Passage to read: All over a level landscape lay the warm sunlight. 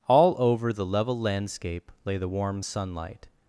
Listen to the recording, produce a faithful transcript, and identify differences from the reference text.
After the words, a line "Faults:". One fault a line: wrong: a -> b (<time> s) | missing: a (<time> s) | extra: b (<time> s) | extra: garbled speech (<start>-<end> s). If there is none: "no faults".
All over the level landscape lay the warm sunlight.
Faults:
wrong: a -> the (0.7 s)